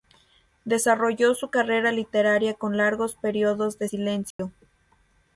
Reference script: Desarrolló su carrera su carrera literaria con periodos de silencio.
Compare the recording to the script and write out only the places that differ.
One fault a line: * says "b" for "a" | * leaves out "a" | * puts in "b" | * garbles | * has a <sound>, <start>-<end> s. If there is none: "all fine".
* leaves out "su carrera"
* puts in "largos"
* has a dropout, 4.3-4.4 s